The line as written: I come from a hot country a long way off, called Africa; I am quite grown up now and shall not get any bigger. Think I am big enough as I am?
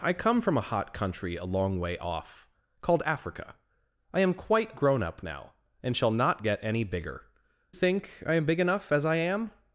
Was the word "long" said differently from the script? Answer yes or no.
no